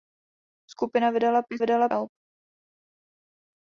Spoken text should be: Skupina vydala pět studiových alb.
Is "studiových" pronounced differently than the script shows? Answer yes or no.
yes